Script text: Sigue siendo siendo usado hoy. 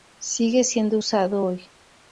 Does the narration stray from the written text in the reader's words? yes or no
yes